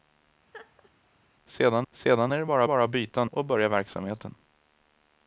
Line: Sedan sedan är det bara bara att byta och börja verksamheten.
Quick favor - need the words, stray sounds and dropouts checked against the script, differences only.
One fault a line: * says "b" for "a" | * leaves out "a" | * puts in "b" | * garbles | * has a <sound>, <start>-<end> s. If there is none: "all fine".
* has a laugh, 0.5-0.9 s